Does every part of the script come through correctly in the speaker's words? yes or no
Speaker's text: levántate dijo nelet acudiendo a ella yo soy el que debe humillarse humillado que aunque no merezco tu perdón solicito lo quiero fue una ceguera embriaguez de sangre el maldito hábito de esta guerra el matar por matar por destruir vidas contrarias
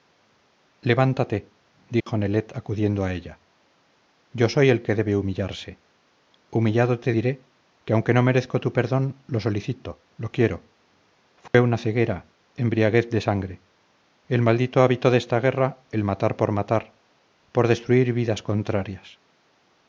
no